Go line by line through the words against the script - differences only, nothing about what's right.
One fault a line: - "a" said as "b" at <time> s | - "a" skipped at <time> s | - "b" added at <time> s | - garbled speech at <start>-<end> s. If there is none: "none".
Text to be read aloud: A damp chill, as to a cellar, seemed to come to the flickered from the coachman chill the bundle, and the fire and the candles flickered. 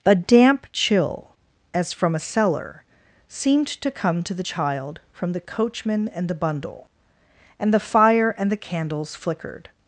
- "to" said as "from" at 1.9 s
- "flickered" said as "child" at 4.4 s
- "chill" said as "and" at 6.1 s